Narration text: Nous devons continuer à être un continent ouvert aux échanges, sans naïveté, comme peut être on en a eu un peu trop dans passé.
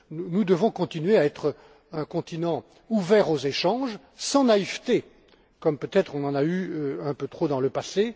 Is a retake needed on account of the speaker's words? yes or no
yes